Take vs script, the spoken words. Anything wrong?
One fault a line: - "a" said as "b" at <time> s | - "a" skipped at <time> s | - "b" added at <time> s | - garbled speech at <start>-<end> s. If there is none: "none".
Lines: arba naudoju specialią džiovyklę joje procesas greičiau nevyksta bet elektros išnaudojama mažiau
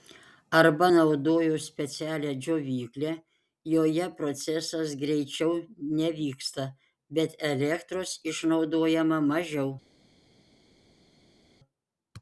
none